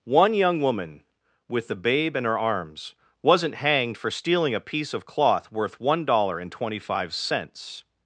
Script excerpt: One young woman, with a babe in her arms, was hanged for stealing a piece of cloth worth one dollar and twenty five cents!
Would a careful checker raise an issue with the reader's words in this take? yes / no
yes